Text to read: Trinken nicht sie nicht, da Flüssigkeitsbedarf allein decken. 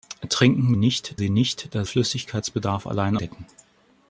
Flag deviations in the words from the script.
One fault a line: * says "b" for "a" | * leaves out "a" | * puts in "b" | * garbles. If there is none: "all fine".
all fine